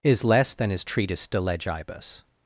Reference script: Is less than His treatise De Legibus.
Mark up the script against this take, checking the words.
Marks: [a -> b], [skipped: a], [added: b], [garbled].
Is less than His treatise De Legibus.